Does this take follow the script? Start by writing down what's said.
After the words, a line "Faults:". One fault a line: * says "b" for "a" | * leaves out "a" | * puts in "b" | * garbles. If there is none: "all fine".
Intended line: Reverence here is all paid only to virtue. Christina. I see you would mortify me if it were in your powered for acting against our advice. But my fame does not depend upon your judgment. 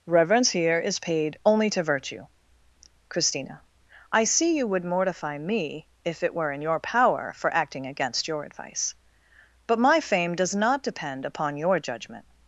Reverence here is paid only to virtue. Christina. I see you would mortify me if it were in your power for acting against your advice. But my fame does not depend upon your judgment.
Faults:
* leaves out "all"
* says "power" for "powered"
* says "your" for "our"